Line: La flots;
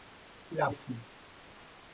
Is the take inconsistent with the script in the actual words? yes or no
no